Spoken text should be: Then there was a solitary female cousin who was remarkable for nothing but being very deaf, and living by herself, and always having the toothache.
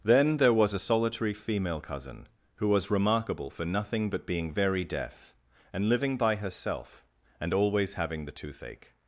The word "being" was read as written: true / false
true